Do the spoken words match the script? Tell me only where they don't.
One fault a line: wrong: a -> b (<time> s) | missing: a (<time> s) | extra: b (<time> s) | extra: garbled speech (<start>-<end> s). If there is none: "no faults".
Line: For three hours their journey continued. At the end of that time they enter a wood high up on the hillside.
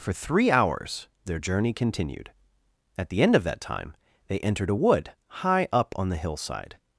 wrong: enter -> entered (4.4 s)